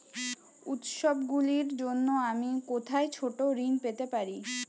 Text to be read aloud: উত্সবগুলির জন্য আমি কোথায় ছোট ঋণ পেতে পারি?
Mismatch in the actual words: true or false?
false